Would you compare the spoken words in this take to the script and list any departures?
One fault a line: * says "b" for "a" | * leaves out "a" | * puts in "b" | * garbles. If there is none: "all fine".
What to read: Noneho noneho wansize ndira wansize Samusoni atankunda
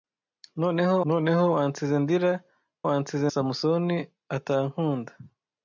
all fine